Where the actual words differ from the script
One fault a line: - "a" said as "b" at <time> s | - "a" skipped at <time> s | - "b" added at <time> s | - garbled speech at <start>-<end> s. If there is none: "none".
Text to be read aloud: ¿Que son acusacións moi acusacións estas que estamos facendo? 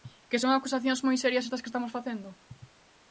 - "acusacións" said as "serias" at 1.2 s